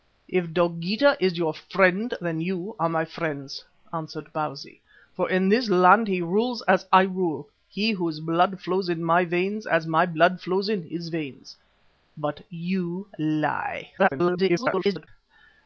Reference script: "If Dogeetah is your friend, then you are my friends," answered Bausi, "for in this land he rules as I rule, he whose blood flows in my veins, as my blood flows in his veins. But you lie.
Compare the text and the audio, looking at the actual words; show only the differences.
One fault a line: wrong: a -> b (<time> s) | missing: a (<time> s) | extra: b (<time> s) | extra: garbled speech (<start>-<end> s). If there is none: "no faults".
extra: garbled speech (14.0-15.1 s)